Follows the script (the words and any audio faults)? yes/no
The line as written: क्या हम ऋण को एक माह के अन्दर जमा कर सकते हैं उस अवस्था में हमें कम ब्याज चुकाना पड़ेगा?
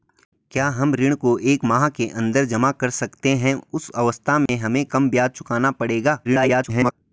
no